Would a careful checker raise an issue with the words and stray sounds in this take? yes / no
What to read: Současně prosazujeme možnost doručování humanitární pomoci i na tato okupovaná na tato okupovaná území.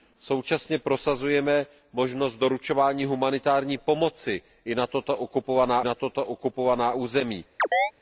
yes